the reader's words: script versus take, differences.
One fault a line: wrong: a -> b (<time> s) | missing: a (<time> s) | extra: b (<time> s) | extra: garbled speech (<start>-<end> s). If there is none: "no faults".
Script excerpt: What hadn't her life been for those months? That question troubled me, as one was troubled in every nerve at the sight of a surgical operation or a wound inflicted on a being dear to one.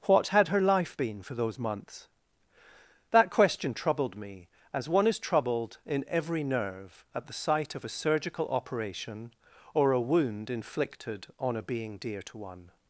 wrong: hadn't -> had (0.3 s)
wrong: was -> is (5.1 s)